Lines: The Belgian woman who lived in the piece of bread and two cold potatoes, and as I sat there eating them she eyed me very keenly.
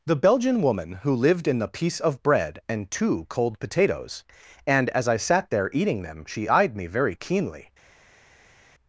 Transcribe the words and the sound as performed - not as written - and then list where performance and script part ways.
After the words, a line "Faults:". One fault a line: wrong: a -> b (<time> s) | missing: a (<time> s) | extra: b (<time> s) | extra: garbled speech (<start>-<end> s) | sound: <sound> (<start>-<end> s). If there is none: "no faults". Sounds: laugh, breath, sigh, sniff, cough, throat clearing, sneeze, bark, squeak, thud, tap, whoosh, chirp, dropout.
The Belgian woman who lived in the piece of bread and two cold potatoes, and as I sat there eating them she eyed me very keenly.
Faults:
no faults